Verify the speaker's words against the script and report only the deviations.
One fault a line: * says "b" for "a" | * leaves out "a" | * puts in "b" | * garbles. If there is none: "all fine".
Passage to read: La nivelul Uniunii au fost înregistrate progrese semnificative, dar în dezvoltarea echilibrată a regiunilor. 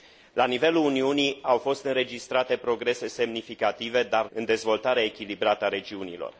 all fine